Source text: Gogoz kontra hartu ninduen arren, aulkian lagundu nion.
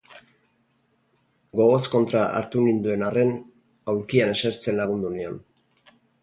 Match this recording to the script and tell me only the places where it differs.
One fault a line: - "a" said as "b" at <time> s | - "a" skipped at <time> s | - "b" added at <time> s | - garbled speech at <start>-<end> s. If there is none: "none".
- "esertzen" added at 4.4 s